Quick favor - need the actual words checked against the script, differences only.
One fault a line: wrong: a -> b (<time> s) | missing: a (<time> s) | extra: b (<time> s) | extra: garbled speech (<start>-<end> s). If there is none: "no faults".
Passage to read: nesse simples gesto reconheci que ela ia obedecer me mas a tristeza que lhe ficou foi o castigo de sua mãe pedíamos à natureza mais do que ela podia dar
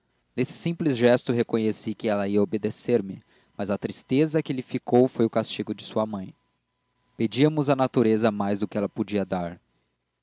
no faults